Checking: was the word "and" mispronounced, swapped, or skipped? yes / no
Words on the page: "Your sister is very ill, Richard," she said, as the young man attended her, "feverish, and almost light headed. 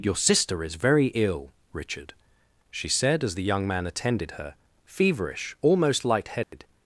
yes